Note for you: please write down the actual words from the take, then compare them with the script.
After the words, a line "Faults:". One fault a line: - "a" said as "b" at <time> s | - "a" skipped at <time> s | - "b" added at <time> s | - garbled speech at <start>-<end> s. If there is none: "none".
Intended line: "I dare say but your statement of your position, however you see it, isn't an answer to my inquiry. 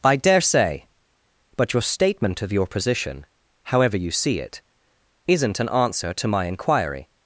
"I dare say but your statement of your position, however you see it, isn't an answer to my inquiry.
Faults:
none